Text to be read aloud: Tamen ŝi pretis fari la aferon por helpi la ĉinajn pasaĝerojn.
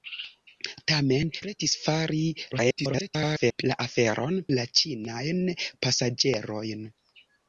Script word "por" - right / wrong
wrong